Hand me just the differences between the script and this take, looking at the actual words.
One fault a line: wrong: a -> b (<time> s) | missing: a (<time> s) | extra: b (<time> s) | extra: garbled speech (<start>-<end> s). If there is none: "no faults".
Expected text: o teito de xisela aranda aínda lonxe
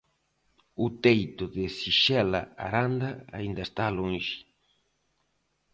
extra: está (3.7 s)